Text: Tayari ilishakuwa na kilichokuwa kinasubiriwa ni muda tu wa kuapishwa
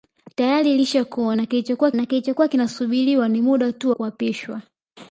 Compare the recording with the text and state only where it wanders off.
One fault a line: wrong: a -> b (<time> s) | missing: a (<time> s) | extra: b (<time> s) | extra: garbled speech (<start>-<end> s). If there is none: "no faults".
extra: na kilichokuwa (1.9 s)
missing: wa (3.9 s)